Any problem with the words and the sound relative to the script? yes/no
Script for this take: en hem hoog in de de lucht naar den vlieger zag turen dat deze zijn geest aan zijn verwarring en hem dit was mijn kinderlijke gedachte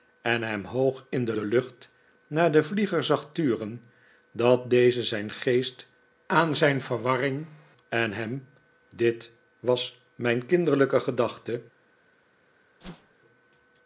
yes